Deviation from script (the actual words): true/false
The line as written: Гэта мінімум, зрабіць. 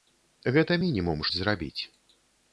false